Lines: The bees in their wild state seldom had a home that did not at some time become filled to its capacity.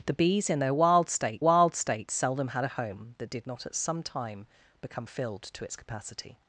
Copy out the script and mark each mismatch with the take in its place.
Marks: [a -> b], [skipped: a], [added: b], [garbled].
The bees in their wild state [added: wild state] seldom had a home that did not at some time become filled to its capacity.